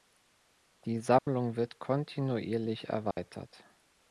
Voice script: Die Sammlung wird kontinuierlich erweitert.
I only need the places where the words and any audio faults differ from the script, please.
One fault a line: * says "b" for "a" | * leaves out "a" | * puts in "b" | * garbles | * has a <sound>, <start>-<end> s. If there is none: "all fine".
* has a dropout, 1.2-1.3 s
* has a dropout, 3.1-3.2 s